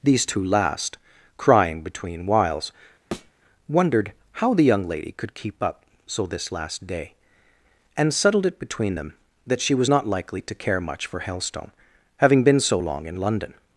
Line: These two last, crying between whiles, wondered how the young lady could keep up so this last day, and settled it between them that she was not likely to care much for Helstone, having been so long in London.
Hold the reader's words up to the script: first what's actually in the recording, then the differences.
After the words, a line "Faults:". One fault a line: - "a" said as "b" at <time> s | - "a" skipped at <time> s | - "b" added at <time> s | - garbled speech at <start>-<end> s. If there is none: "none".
These two last, crying between whiles, wondered how the young lady could keep up so this last day, and settled it between them that she was not likely to care much for Helstone, having been so long in London.
Faults:
none